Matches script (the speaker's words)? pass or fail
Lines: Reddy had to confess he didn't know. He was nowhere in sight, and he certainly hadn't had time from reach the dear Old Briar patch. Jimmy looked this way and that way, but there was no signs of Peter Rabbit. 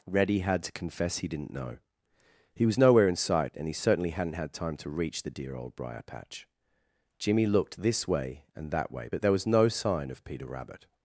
fail